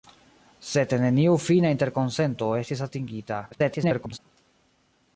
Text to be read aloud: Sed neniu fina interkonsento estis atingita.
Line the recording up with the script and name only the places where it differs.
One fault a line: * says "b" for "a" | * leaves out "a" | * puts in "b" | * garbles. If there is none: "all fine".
* garbles